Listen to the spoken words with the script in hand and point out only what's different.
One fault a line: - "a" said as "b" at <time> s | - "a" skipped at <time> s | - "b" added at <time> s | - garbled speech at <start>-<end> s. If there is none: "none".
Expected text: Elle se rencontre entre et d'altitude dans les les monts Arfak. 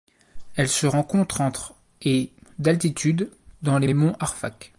none